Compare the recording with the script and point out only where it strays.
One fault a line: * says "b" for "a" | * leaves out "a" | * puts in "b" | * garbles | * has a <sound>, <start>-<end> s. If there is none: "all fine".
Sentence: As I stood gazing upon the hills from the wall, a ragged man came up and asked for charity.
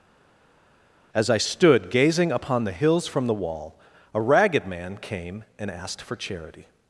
* leaves out "up"